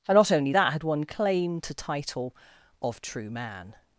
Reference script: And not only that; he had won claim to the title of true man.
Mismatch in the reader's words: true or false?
true